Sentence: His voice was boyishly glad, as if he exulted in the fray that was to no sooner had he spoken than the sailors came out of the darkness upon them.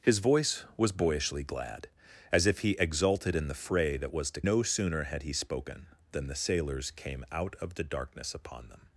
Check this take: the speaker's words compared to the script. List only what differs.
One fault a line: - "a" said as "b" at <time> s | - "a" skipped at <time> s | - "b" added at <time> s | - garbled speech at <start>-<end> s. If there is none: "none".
none